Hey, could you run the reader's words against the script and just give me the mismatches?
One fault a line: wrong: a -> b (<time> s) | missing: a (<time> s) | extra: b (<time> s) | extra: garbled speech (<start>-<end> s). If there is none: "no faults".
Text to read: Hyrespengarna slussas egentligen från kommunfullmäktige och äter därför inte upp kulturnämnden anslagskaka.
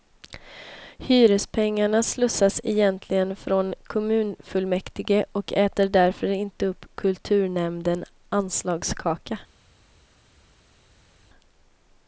no faults